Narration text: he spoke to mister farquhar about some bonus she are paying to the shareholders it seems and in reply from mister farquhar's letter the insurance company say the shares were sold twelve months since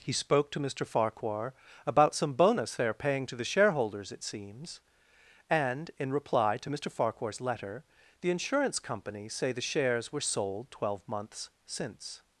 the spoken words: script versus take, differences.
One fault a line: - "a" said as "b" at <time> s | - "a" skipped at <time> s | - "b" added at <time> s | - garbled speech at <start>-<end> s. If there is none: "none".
- "she" said as "they" at 2.8 s
- "from" said as "to" at 6.6 s